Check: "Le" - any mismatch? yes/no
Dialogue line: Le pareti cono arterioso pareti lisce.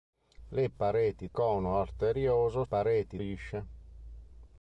no